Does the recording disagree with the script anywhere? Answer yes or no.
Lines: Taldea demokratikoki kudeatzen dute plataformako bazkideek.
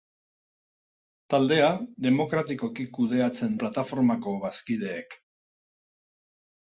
yes